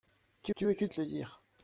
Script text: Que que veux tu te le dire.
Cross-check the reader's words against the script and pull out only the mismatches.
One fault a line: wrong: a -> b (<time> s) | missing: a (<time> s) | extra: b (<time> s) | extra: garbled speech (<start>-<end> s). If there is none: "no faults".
no faults